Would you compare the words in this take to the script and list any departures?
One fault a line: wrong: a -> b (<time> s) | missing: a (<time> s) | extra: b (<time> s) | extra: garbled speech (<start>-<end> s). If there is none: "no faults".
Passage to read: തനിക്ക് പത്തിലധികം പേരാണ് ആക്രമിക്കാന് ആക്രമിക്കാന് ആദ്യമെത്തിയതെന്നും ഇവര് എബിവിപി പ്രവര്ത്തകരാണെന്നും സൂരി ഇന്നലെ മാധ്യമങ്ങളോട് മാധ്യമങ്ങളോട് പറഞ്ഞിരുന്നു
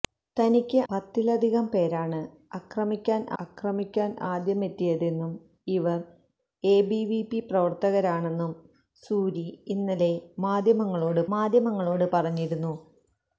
no faults